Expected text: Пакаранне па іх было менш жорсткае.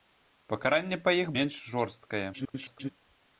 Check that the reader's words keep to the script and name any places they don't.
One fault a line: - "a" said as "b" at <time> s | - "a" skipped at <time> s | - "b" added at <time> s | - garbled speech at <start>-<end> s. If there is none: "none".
- "было" skipped at 1.3 s
- garbled speech at 2.3-2.9 s